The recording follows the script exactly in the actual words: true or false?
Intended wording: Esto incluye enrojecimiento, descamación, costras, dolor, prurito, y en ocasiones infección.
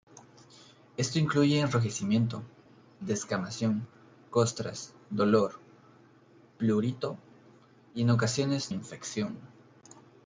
true